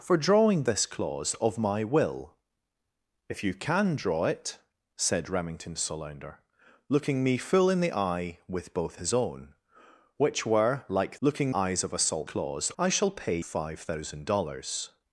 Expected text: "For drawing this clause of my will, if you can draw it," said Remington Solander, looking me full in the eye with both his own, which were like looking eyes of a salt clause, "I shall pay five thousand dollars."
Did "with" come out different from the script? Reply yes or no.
no